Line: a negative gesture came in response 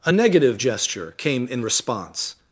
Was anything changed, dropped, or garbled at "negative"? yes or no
no